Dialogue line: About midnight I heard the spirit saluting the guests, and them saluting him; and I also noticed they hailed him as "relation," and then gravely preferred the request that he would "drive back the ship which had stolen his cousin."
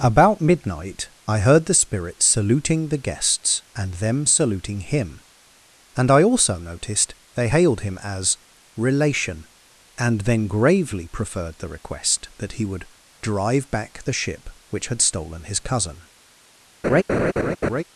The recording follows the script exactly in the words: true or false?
true